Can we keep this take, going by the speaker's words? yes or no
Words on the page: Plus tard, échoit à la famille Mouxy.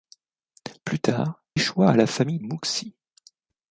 yes